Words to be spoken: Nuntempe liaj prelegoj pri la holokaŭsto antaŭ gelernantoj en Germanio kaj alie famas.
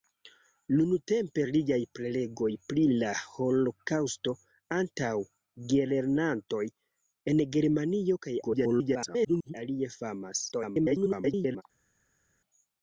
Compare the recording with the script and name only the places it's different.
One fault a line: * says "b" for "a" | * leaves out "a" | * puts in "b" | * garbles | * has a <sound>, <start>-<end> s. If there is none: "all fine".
* garbles
* garbles